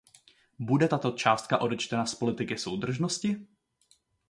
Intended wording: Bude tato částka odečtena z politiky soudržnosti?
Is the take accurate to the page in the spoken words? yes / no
yes